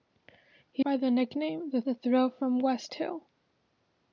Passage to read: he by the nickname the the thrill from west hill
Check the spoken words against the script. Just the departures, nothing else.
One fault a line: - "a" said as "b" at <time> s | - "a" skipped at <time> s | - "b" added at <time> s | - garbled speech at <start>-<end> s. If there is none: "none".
none